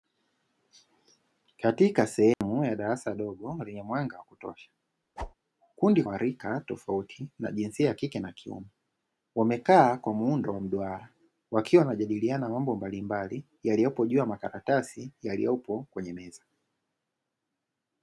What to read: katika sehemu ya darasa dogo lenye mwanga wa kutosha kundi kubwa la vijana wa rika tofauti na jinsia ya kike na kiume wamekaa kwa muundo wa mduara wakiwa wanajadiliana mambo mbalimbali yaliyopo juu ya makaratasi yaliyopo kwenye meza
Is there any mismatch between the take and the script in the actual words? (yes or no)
yes